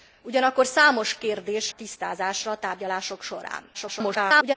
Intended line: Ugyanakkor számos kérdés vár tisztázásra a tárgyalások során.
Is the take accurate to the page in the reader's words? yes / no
no